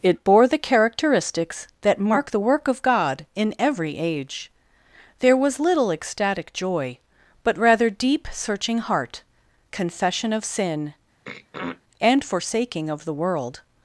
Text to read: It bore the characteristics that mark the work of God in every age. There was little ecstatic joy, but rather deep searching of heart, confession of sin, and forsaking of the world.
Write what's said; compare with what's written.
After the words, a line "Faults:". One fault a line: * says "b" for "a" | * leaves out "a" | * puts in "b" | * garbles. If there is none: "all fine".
It bore the characteristics that mark the work of God in every age. There was little ecstatic joy, but rather deep searching heart, confession of sin, and forsaking of the world.
Faults:
* leaves out "of"